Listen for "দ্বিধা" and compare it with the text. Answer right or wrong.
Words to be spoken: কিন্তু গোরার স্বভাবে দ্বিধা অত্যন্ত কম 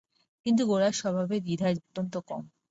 right